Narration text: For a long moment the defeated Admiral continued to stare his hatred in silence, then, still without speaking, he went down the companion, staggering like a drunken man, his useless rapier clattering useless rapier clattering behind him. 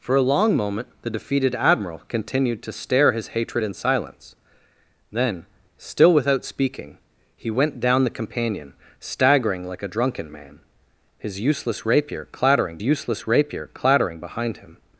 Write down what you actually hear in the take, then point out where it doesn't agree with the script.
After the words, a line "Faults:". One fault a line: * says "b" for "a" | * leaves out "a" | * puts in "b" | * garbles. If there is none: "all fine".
For a long moment the defeated Admiral continued to stare his hatred in silence, then, still without speaking, he went down the companion, staggering like a drunken man, his useless rapier clattering useless rapier clattering behind him.
Faults:
all fine